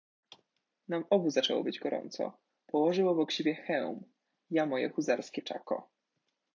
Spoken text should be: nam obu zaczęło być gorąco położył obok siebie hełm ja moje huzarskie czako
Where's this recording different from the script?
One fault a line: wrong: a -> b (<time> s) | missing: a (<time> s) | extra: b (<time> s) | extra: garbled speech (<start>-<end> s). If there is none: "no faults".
no faults